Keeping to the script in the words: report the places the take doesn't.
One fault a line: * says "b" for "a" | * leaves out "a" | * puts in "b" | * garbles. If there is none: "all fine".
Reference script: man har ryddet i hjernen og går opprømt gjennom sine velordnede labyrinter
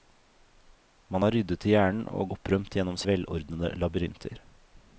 * leaves out "går"
* leaves out "sine"